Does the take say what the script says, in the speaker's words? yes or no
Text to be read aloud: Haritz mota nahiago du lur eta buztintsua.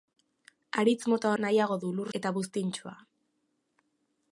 yes